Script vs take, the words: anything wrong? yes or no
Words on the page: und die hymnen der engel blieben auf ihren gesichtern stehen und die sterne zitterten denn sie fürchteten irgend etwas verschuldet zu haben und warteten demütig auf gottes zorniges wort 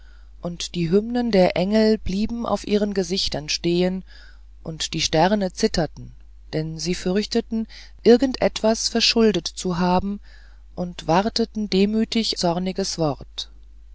yes